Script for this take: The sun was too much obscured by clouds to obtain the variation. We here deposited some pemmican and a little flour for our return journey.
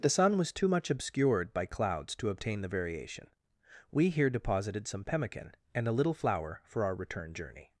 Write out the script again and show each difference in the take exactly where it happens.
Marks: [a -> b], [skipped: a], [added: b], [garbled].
The sun was too much obscured by clouds to obtain the variation. We here deposited some pemmican and a little flour for our return journey.